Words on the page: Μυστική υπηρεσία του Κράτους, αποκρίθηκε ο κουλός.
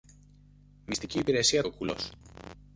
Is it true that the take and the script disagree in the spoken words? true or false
true